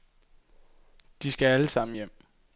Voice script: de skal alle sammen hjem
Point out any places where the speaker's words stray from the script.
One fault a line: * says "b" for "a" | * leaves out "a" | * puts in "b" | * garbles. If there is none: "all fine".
all fine